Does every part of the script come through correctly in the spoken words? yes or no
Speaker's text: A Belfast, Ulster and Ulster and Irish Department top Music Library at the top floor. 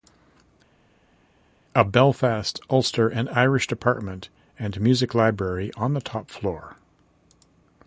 no